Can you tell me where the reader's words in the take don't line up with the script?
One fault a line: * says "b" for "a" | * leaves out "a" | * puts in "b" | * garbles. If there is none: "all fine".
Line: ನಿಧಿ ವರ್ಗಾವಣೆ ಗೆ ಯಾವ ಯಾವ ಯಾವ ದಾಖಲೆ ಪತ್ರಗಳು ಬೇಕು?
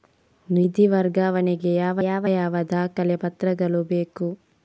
all fine